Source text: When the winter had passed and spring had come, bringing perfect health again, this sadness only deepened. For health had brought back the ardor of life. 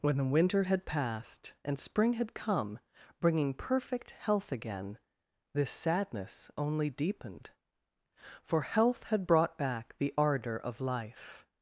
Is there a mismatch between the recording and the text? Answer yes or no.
no